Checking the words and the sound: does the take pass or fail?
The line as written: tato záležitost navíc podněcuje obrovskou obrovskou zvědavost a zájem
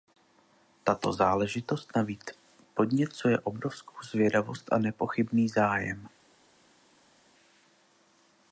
fail